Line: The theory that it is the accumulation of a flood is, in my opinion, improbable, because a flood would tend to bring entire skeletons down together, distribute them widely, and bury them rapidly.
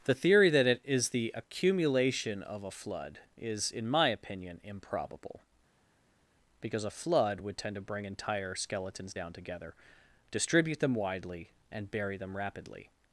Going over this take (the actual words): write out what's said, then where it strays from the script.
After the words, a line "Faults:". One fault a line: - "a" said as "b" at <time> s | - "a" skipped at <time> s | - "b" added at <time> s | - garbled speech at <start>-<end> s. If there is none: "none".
The theory that it is the accumulation of a flood is, in my opinion, improbable, because a flood would tend to bring entire skeletons down together, distribute them widely, and bury them rapidly.
Faults:
none